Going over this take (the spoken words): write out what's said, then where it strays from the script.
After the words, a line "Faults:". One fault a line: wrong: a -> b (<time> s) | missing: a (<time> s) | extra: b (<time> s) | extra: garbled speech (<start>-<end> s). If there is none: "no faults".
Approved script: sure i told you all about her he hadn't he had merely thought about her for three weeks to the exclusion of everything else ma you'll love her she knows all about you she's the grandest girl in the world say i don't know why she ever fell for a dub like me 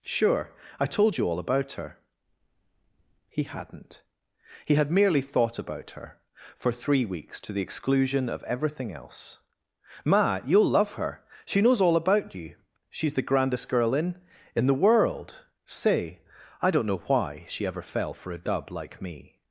sure i told you all about her he hadn't he had merely thought about her for three weeks to the exclusion of everything else ma you'll love her she knows all about you she's the grandest girl in in the world say i don't know why she ever fell for a dub like me
Faults:
extra: in (14.6 s)